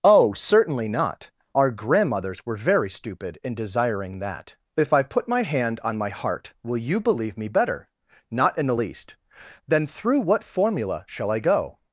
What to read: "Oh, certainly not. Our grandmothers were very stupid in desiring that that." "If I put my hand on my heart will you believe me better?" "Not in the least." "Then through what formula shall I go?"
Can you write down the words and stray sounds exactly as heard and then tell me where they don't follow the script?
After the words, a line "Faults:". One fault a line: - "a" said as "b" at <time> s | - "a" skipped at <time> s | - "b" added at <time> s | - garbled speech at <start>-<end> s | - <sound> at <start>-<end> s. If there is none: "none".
"Oh, certainly not. Our grandmothers were very stupid in desiring that." "If I put my hand on my heart will you believe me better?" "Not in the least." "Then through what formula shall I go?"
Faults:
- "that" skipped at 4.5 s